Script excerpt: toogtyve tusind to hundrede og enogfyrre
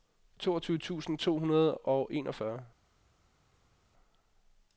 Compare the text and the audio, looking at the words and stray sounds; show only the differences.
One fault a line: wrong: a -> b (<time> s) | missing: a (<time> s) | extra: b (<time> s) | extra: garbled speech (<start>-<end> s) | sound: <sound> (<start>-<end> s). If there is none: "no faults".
no faults